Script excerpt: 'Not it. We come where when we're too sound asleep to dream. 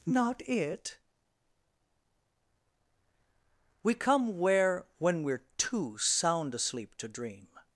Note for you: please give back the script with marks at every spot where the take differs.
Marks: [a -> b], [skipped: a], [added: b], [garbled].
'Not it. We come where when we're too sound asleep to dream.